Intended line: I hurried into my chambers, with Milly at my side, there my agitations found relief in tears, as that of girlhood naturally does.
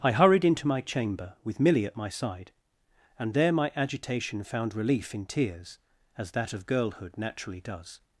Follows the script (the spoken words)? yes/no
no